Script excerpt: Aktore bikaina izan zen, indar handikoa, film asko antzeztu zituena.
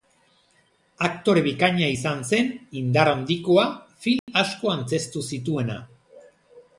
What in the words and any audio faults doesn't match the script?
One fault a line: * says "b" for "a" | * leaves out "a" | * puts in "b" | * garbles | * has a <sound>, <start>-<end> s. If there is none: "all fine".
* has a dropout, 4.2-4.3 s